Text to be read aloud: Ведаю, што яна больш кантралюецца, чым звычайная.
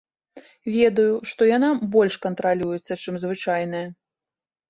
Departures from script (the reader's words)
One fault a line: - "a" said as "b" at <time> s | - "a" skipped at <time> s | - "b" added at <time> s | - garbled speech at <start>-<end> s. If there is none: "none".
none